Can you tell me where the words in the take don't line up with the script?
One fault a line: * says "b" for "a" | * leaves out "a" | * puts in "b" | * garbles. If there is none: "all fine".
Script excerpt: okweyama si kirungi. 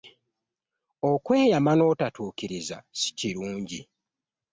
* puts in "n'otatuukiriza"